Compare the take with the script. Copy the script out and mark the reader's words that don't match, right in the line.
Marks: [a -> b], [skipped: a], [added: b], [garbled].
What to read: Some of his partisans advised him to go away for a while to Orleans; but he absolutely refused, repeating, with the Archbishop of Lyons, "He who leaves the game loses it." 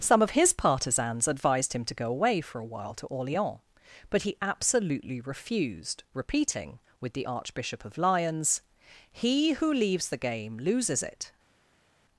Some of his partisans advised him to go away for a while to Orleans; but he absolutely refused, repeating, with the Archbishop of Lyons, "He who leaves the game loses it."